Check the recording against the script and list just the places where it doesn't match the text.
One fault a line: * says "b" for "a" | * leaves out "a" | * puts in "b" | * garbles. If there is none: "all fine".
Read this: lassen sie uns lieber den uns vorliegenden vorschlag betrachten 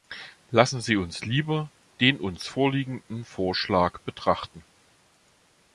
all fine